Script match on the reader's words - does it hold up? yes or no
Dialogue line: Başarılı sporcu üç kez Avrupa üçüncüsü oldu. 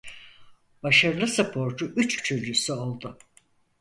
no